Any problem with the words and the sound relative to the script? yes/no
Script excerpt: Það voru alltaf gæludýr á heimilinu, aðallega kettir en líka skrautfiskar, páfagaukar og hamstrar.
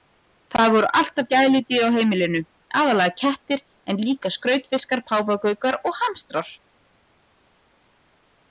no